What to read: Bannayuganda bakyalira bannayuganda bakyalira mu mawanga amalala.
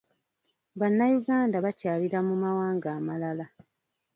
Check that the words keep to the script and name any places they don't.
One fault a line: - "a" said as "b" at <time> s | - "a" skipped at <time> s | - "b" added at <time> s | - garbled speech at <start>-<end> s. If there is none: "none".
- "bannayuganda bakyalira" skipped at 2.2 s